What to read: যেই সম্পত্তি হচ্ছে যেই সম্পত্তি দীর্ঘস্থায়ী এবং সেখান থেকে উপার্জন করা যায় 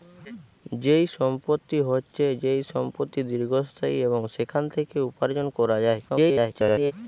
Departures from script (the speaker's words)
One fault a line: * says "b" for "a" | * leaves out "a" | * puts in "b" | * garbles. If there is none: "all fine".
* garbles